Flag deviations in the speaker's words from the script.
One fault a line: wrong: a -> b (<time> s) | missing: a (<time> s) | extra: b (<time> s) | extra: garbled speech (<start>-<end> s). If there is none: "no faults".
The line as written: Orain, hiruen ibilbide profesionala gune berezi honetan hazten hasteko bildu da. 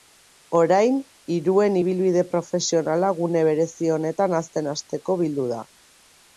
no faults